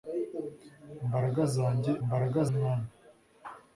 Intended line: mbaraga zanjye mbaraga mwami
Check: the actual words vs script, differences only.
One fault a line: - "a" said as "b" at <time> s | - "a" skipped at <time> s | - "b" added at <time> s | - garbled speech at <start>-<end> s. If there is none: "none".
none